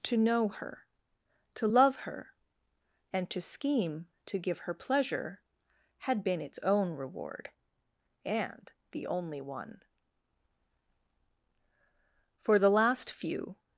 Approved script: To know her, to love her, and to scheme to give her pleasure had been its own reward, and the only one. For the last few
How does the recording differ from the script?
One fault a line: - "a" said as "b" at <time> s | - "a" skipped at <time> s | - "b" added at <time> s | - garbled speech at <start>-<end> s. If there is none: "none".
none